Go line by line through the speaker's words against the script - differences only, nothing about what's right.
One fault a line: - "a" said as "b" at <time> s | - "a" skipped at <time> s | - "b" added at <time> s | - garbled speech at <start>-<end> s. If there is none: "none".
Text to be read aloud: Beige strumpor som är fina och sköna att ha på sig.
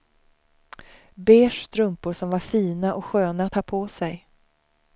- "är" said as "var" at 2.3 s